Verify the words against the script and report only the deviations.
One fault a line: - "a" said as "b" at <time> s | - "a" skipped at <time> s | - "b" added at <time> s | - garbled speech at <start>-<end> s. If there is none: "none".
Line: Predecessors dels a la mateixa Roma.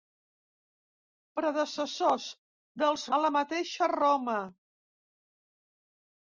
none